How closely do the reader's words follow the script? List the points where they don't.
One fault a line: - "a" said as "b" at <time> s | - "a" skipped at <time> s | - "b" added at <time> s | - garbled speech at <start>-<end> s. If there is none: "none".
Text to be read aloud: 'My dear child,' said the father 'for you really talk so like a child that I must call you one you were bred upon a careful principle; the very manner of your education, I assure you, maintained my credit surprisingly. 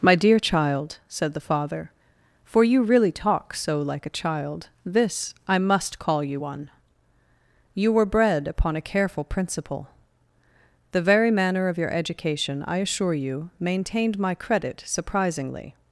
- "that" said as "this" at 4.8 s